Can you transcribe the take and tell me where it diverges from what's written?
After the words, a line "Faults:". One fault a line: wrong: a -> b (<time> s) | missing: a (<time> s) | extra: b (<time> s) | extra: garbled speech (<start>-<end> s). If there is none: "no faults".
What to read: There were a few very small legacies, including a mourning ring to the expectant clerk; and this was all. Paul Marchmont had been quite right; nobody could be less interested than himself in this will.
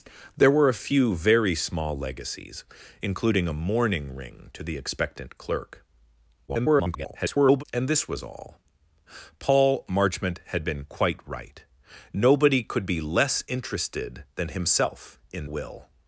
There were a few very small legacies, including a mourning ring to the expectant clerk; [garbled] and this was all. Paul Marchmont had been quite right; nobody could be less interested than himself in will.
Faults:
extra: garbled speech (6.5-7.6 s)
missing: this (15.5 s)